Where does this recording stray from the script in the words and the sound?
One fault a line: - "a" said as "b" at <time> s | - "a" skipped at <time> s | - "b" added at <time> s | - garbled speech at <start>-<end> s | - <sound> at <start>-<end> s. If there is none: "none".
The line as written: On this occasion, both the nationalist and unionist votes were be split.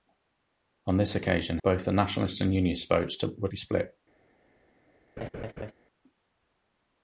- laugh at 5.2-5.7 s